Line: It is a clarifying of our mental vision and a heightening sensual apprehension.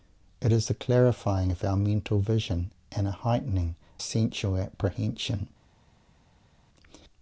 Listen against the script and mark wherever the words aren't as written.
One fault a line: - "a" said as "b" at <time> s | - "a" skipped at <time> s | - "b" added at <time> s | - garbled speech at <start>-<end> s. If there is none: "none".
none